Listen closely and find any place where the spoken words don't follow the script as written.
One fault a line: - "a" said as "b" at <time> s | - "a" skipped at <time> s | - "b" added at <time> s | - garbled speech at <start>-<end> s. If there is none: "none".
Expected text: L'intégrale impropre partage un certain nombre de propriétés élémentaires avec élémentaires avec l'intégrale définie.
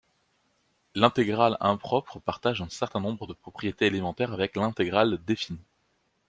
- "élémentaires avec" skipped at 4.6 s